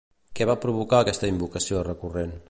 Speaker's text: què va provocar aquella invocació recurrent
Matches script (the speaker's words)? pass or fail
fail